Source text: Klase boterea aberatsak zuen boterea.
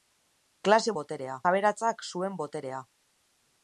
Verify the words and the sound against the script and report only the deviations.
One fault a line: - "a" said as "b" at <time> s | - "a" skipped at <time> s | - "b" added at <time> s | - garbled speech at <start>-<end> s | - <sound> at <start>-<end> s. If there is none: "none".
none